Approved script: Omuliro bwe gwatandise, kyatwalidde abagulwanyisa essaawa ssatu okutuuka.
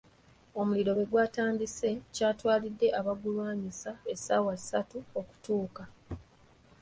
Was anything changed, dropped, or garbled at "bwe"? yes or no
no